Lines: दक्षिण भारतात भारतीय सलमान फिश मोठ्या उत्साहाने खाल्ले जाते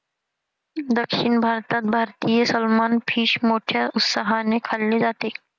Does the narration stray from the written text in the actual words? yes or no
no